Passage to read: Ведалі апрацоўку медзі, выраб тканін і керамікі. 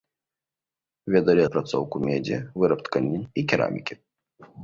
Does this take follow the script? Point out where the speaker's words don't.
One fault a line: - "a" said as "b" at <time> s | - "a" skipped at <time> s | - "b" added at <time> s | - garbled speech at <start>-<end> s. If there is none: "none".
none